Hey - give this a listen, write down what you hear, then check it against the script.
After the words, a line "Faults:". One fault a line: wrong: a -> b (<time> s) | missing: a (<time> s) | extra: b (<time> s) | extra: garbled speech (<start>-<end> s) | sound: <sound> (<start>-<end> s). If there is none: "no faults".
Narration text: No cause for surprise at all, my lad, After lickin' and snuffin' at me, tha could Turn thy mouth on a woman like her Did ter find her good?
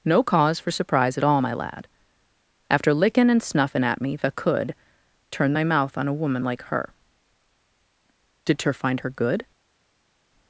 No cause for surprise at all, my lad, After lickin' and snuffin' at me, tha could Turn thy mouth on a woman like her Did ter find her good?
Faults:
no faults